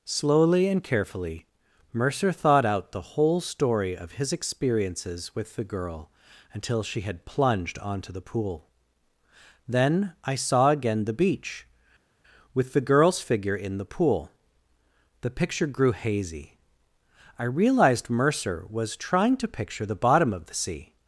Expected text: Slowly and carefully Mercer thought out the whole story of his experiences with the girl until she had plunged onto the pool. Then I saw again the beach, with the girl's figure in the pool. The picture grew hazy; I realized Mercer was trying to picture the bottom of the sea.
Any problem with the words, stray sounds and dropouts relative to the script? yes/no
no